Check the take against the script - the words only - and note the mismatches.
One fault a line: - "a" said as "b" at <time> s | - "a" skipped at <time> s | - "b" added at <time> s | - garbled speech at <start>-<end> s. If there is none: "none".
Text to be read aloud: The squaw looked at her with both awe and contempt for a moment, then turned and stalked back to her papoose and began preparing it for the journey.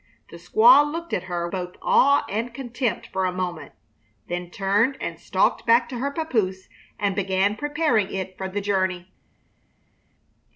- "with" skipped at 1.5 s